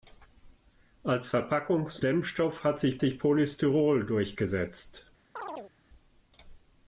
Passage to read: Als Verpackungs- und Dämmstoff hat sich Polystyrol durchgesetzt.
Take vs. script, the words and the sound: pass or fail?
fail